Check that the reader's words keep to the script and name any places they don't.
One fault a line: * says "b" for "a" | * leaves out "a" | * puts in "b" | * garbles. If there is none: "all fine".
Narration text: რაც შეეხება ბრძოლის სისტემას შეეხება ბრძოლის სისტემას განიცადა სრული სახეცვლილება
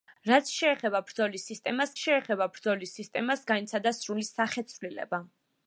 all fine